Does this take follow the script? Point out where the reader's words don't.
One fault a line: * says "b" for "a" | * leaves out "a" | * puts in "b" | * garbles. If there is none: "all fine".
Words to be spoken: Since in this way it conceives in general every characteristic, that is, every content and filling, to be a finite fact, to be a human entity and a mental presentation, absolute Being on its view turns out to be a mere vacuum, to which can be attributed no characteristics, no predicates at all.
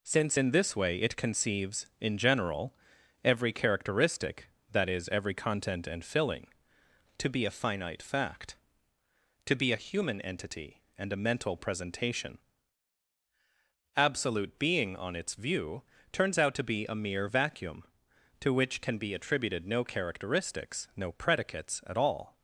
all fine